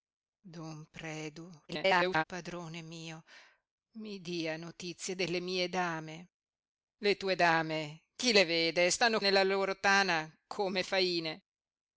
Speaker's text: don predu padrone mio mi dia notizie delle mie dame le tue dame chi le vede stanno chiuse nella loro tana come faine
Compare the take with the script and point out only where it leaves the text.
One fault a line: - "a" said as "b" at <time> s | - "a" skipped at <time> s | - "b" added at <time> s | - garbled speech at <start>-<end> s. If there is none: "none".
- garbled speech at 1.7-2.2 s
- "chiuse" skipped at 9.2 s